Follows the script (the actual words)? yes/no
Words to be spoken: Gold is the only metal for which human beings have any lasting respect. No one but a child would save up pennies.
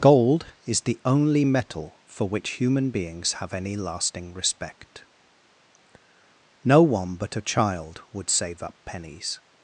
yes